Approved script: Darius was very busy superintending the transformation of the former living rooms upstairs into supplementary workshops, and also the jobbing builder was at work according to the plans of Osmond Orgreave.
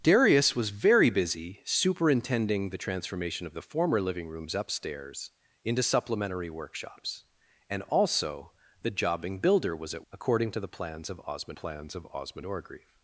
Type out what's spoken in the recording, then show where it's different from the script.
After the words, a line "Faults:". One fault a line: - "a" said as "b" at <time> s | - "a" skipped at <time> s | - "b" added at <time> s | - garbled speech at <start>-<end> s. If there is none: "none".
Darius was very busy superintending the transformation of the former living rooms upstairs into supplementary workshops, and also the jobbing builder was at according to the plans of Osmond plans of Osmond Orgreave.
Faults:
- "work" skipped at 10.1 s
- "plans of Osmond" added at 11.5 s